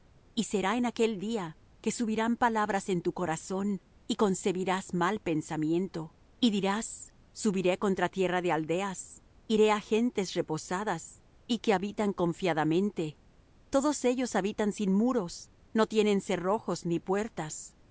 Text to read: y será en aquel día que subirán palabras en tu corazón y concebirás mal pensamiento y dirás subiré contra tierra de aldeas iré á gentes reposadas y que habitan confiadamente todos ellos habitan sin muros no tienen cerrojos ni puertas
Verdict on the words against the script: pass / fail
pass